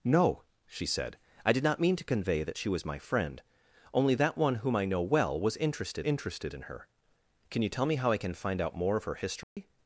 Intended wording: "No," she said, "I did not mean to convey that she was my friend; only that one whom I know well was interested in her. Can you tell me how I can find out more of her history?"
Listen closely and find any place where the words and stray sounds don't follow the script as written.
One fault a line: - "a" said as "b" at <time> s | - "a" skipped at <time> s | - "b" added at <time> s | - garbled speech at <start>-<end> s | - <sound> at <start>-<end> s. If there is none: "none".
- "interested" added at 6.0 s
- dropout at 9.4-9.6 s